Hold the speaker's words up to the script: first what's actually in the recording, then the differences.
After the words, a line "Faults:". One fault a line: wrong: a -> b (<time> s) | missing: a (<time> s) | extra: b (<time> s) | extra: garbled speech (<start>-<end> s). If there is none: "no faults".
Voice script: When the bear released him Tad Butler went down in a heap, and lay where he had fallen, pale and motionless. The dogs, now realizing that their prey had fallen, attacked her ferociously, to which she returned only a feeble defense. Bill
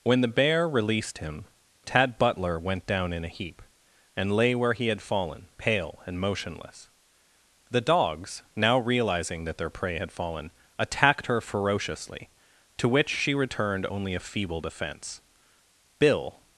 When the bear released him Tad Butler went down in a heap, and lay where he had fallen, pale and motionless. The dogs, now realizing that their prey had fallen, attacked her ferociously, to which she returned only a feeble defense. Bill
Faults:
no faults